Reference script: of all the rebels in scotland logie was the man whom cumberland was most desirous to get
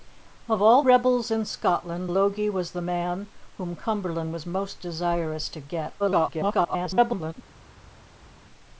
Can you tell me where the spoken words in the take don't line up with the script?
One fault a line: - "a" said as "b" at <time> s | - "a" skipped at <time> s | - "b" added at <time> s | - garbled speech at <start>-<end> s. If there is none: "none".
- "the" skipped at 0.8 s
- garbled speech at 6.0-7.3 s